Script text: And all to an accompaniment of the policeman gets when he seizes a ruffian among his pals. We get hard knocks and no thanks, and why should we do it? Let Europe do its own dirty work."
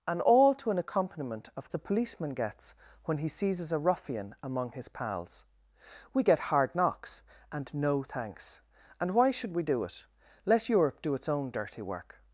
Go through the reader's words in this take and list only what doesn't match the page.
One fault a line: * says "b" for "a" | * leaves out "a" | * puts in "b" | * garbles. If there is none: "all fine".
all fine